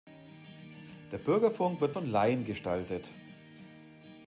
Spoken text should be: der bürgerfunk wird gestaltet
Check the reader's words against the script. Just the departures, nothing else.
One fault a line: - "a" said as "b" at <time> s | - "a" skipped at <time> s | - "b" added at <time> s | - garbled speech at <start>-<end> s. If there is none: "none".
- "von laien" added at 1.9 s